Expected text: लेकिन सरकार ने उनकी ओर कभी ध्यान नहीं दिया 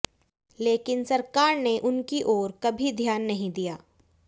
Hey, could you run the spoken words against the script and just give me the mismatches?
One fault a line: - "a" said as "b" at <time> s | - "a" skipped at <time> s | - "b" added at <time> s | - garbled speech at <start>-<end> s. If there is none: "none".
none